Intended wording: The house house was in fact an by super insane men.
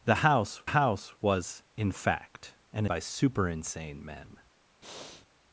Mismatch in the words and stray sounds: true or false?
true